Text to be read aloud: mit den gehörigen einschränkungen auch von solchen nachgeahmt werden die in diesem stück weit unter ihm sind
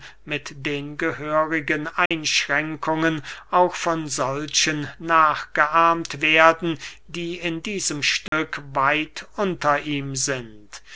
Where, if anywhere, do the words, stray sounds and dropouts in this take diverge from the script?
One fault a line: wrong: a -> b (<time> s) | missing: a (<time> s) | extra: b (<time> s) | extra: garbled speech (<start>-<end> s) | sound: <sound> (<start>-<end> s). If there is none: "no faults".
sound: dropout (2.1-2.1 s)
sound: dropout (8.3-8.3 s)